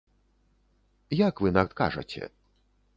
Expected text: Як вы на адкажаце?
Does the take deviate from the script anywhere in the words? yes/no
no